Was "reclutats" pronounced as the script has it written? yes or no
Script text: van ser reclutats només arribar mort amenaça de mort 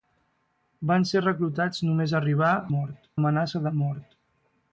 yes